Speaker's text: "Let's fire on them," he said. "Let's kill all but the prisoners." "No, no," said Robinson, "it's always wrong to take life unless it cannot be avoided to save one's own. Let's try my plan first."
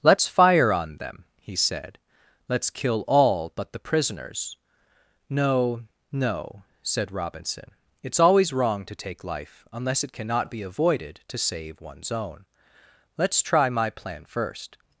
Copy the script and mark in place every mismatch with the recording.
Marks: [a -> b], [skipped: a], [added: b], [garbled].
"Let's fire on them," he said. "Let's kill all but the prisoners." "No, no," said Robinson, "it's always wrong to take life unless it cannot be avoided to save one's own. Let's try my plan first."